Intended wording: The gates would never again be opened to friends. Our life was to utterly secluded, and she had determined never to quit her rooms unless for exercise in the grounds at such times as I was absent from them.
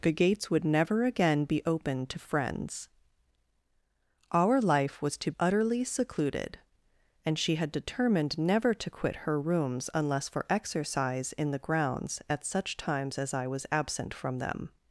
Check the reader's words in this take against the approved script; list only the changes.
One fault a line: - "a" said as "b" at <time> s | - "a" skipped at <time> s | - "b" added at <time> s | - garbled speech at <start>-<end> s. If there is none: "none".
none